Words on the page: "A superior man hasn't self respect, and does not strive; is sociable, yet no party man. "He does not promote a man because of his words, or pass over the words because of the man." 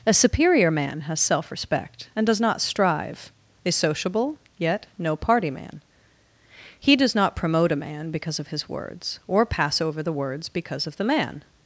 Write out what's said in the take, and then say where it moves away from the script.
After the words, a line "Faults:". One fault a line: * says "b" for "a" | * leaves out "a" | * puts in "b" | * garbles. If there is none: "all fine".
"A superior man has self respect, and does not strive; is sociable, yet no party man. "He does not promote a man because of his words, or pass over the words because of the man."
Faults:
* says "has" for "hasn't"